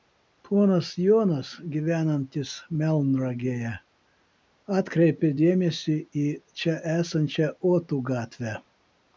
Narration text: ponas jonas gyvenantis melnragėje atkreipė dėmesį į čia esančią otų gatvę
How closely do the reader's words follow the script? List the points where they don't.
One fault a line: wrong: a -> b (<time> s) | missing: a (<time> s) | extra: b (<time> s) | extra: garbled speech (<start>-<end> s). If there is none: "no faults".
no faults